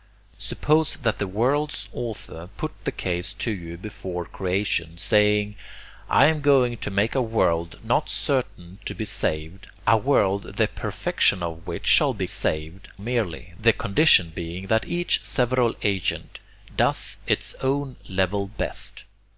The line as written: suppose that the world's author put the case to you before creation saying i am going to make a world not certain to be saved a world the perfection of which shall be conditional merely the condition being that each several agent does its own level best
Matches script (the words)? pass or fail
fail